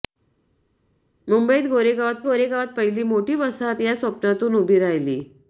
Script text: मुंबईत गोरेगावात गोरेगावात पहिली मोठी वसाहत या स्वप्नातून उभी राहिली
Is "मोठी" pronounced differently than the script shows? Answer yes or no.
no